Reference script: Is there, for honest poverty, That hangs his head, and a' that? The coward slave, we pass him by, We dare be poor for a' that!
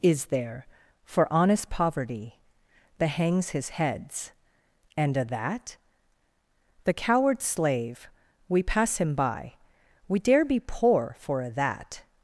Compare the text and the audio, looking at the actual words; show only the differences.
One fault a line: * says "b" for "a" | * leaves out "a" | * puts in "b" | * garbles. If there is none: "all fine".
* says "heads" for "head"